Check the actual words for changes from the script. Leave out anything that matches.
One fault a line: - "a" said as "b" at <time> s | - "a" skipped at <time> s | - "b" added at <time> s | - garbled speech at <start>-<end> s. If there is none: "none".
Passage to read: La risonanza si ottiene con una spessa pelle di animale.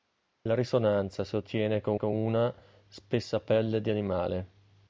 - "con" added at 1.9 s